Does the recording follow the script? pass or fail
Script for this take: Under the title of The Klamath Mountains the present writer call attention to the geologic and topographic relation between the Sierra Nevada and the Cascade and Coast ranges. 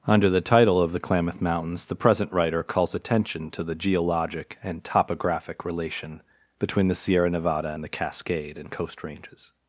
fail